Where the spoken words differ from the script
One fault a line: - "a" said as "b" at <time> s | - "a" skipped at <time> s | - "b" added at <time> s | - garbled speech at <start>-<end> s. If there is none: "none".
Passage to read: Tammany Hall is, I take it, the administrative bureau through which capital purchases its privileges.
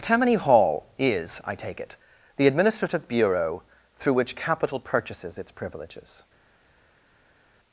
none